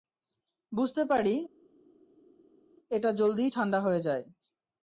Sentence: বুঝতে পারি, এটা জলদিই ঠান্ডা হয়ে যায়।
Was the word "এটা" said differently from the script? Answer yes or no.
no